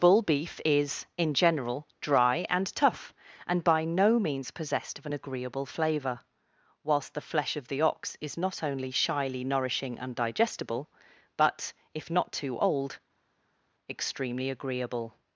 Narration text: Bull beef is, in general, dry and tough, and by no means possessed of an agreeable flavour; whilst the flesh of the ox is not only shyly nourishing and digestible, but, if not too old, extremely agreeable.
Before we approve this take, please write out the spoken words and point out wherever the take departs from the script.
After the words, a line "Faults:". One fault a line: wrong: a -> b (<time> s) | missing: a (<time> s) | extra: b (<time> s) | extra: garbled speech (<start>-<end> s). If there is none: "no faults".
Bull beef is, in general, dry and tough, and by no means possessed of an agreeable flavour; whilst the flesh of the ox is not only shyly nourishing and digestible, but, if not too old, extremely agreeable.
Faults:
no faults